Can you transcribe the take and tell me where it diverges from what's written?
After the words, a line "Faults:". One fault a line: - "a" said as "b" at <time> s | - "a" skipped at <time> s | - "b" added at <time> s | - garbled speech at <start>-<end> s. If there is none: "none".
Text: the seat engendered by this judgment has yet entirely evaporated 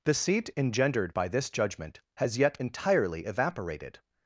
the seat engendered by this judgment has yet entirely evaporated
Faults:
none